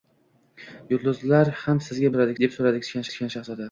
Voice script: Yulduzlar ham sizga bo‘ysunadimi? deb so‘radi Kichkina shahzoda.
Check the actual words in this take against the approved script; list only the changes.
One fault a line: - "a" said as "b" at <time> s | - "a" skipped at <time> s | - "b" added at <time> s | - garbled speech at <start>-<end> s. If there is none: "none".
- "bo‘ysunadimi" said as "so‘radi" at 2.1 s
- "Kichkina" added at 3.1 s